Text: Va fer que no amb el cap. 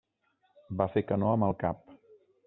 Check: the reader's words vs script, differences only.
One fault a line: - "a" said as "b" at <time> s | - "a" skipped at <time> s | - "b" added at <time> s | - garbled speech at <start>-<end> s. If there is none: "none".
none